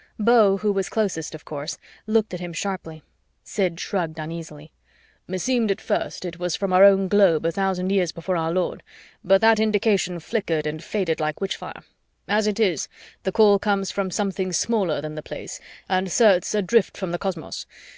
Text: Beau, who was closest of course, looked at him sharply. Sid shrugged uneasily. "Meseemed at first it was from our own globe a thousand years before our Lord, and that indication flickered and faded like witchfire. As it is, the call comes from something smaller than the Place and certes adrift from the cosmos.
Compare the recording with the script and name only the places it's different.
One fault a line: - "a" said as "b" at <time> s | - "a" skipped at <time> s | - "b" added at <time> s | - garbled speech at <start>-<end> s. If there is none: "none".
- "and" said as "but" at 9.2 s